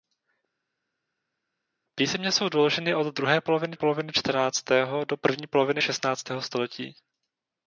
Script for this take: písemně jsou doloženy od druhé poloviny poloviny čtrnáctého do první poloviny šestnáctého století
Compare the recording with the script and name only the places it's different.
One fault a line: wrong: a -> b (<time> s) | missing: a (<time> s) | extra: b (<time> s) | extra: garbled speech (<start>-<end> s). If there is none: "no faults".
no faults